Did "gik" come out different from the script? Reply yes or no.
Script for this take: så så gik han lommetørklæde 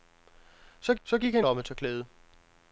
no